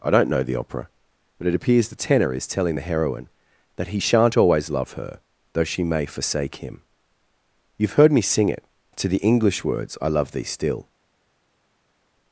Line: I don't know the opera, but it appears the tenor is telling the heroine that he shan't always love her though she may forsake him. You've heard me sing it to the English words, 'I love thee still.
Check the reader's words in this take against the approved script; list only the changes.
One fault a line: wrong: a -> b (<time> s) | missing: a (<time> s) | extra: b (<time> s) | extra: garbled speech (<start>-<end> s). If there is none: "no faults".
no faults